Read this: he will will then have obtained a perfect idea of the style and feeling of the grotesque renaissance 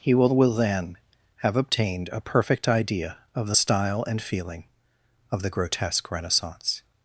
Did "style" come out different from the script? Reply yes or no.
no